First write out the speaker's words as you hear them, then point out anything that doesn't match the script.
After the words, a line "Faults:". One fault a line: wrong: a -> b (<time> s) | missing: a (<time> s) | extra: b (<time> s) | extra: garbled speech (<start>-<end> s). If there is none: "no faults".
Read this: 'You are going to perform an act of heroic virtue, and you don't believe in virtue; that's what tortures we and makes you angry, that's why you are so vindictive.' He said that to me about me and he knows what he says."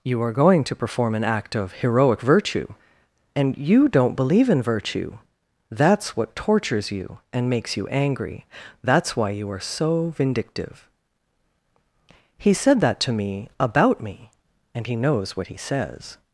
'You are going to perform an act of heroic virtue, and you don't believe in virtue; that's what tortures you and makes you angry, that's why you are so vindictive.' He said that to me about me and he knows what he says."
Faults:
wrong: we -> you (6.9 s)